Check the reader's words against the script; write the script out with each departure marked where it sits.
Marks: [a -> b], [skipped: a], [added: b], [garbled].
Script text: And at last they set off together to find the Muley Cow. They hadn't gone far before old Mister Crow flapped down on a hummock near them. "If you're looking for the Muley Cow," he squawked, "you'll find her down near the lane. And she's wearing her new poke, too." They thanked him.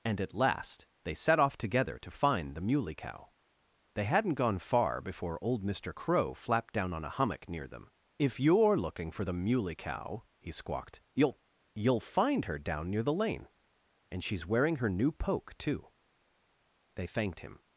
And at last they set off together to find the Muley Cow. They hadn't gone far before old Mister Crow flapped down on a hummock near them. "If you're looking for the Muley Cow," he squawked, "you'll [added: you'll] find her down near the lane. And she's wearing her new poke, too." They thanked him.